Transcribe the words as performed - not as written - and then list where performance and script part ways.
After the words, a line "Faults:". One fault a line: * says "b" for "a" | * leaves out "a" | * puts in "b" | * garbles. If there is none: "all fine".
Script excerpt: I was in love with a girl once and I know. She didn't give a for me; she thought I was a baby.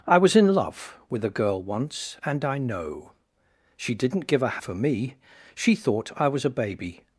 I was in love with a girl once and I know. She didn't give a for me; she thought I was a baby.
Faults:
all fine